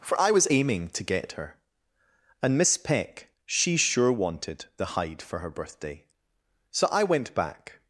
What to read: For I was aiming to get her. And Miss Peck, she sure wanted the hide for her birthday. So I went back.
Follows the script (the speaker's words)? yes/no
yes